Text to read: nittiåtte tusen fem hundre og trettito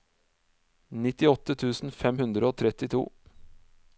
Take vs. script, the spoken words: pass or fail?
pass